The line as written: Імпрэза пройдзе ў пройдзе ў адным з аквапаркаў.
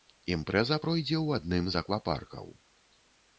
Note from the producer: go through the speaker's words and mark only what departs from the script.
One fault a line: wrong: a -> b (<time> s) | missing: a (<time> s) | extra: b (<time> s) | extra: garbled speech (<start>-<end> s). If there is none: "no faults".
missing: пройдзе ў (1.4 s)